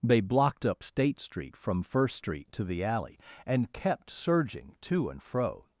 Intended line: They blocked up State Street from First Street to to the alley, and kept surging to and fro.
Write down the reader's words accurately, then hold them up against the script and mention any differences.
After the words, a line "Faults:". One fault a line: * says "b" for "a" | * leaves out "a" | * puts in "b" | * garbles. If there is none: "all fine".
They blocked up State Street from First Street to the alley, and kept surging to and fro.
Faults:
* leaves out "to"